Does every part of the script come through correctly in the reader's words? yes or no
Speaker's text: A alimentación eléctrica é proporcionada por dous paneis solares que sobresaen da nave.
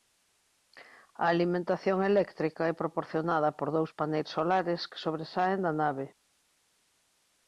yes